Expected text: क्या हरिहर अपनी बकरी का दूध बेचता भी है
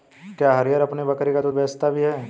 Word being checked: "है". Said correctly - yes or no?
yes